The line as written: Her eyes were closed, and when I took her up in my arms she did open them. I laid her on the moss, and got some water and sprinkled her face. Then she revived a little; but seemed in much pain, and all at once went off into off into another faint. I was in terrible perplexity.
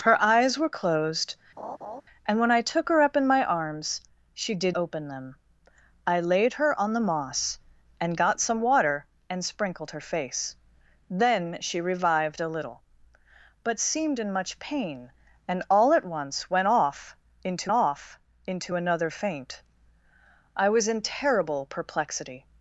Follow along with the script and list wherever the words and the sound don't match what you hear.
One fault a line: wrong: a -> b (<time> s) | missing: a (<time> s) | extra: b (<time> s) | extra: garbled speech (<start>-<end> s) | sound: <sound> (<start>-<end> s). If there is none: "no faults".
sound: laugh (1.6-2.0 s)